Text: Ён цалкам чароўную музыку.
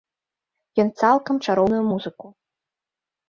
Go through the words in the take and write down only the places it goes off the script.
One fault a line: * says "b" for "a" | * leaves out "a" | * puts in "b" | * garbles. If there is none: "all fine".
all fine